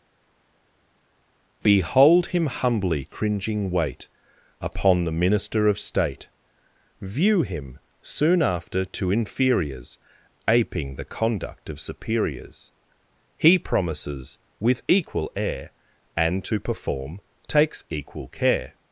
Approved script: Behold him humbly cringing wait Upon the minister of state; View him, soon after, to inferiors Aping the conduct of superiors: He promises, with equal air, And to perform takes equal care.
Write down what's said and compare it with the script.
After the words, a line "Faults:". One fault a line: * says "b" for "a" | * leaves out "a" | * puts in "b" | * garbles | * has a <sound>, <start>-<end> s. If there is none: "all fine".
Behold him humbly cringing wait Upon the minister of state; View him, soon after, to inferiors Aping the conduct of superiors: He promises, with equal air, And to perform takes equal care.
Faults:
all fine